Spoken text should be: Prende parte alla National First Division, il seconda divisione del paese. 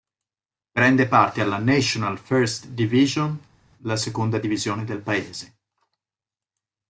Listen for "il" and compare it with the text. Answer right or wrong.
wrong